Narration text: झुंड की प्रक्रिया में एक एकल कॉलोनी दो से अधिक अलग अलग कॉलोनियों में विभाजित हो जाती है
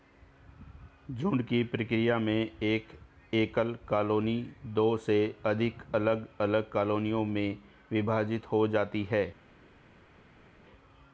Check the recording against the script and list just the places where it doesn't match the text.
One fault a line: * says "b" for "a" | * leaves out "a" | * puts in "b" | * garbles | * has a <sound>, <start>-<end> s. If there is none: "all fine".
all fine